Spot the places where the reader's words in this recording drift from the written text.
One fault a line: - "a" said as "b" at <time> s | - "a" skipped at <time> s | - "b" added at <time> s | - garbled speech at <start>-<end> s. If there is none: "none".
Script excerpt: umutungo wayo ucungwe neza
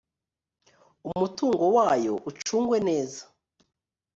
none